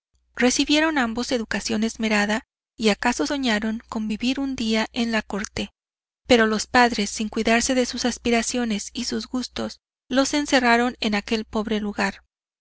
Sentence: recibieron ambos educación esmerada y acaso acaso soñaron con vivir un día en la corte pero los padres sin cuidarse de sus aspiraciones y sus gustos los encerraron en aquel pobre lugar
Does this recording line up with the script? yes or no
no